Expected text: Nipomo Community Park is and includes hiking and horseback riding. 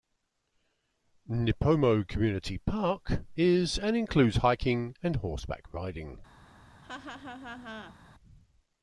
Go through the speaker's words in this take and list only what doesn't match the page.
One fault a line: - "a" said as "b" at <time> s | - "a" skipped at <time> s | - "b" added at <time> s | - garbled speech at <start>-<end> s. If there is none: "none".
none